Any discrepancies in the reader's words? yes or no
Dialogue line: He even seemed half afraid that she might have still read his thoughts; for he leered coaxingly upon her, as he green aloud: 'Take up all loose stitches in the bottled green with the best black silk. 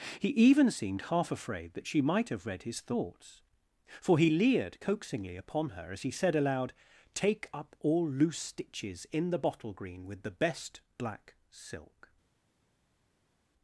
yes